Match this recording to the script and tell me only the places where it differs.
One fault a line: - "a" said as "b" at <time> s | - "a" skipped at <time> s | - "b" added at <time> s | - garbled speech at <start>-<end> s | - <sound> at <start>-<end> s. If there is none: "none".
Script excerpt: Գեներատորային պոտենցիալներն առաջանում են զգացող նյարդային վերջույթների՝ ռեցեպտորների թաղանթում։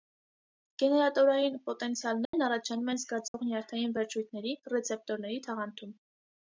- dropout at 2.3-2.3 s
- dropout at 3.3-3.3 s